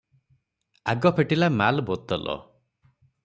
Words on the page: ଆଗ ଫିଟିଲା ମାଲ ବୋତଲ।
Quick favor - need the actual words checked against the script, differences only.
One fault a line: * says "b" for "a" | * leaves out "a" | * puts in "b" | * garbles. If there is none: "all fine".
all fine